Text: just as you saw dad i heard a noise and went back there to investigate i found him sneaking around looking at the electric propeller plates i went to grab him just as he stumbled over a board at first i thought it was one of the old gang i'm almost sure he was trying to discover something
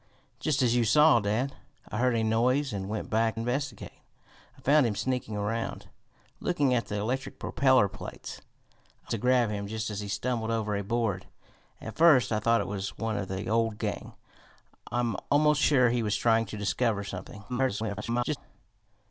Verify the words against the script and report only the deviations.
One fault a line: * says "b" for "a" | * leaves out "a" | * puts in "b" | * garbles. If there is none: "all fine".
* leaves out "there to"
* leaves out "went"
* garbles